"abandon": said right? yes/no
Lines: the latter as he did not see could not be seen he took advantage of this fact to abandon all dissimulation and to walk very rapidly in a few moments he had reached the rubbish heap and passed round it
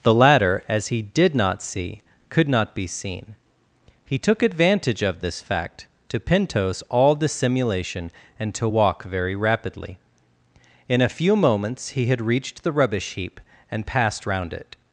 no